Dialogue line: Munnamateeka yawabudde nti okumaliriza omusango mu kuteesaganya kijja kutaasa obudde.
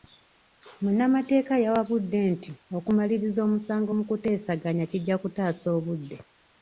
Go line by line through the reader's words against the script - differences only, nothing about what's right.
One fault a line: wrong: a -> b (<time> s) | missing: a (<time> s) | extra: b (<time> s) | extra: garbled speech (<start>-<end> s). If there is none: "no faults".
no faults